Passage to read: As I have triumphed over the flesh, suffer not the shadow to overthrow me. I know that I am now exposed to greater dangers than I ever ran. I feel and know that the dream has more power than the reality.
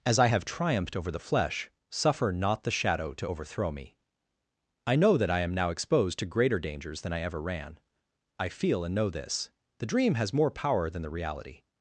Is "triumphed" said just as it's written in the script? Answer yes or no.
yes